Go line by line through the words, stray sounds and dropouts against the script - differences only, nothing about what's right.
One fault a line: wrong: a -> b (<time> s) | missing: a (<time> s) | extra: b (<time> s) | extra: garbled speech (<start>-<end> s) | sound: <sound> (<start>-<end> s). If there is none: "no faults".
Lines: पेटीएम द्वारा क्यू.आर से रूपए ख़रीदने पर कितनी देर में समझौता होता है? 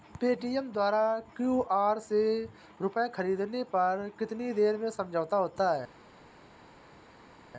no faults